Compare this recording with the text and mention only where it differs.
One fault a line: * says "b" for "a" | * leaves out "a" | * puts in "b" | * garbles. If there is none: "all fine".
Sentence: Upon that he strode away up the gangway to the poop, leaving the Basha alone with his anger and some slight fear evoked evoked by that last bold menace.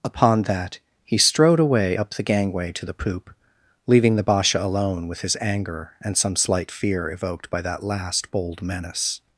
* leaves out "evoked"